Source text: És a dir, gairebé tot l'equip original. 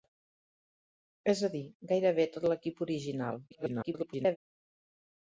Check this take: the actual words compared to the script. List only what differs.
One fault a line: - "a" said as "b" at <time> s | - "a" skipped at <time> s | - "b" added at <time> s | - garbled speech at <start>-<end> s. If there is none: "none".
- garbled speech at 3.5-4.4 s